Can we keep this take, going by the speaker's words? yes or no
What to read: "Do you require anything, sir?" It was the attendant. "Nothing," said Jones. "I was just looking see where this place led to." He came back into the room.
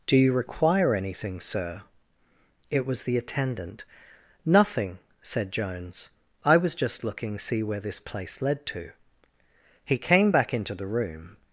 yes